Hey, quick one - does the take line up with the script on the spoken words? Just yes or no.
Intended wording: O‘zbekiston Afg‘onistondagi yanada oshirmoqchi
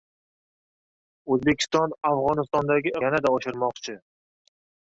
yes